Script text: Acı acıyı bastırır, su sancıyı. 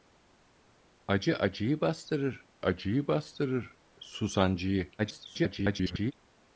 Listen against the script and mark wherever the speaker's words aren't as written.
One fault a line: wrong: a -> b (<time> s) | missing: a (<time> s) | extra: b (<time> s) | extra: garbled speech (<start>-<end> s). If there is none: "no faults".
extra: acıyı bastırır (2.6 s)
extra: garbled speech (5.0-6.1 s)